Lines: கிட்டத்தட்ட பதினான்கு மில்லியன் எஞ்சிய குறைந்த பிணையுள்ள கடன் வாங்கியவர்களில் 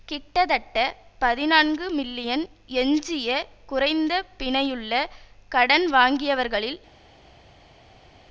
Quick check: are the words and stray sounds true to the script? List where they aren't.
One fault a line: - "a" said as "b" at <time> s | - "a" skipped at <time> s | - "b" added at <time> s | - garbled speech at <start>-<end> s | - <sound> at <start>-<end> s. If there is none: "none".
none